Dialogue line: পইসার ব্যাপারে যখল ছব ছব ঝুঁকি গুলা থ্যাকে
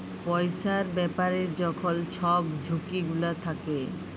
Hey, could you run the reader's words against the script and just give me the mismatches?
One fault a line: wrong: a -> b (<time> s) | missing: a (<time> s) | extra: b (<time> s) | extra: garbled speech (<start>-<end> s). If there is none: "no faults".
missing: ছব (2.4 s)